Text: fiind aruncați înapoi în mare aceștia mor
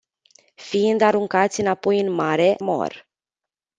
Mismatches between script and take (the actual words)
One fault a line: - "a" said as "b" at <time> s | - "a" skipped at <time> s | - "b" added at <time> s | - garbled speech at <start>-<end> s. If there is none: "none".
- "aceștia" skipped at 2.5 s